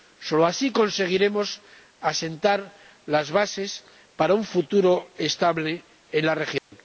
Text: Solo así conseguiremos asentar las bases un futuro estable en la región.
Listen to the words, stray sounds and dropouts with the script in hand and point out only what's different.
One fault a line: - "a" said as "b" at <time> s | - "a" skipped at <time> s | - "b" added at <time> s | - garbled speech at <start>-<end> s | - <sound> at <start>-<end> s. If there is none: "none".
- "para" added at 4.2 s
- dropout at 6.6-6.7 s